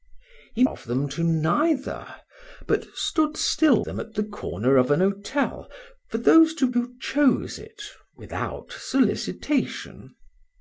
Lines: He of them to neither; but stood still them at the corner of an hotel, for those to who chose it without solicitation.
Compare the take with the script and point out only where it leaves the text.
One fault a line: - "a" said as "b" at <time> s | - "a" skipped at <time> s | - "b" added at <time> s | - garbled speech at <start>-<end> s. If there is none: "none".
none